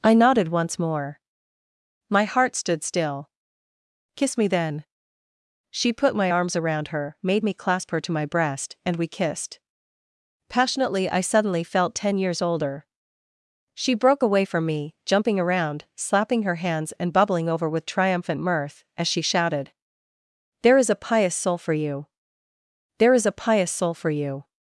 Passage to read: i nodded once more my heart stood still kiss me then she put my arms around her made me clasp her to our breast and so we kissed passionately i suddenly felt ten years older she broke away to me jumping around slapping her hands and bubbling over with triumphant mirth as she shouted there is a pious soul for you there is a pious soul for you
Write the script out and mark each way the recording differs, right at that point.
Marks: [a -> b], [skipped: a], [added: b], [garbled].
i nodded once more my heart stood still kiss me then she put my arms around her made me clasp her to [our -> my] breast and [skipped: so] we kissed passionately i suddenly felt ten years older she broke away [to -> from] me jumping around slapping her hands and bubbling over with triumphant mirth as she shouted there is a pious soul for you there is a pious soul for you